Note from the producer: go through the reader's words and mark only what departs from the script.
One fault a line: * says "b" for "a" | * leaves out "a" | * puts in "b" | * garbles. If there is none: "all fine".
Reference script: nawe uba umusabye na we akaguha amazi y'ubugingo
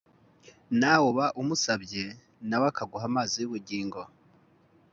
all fine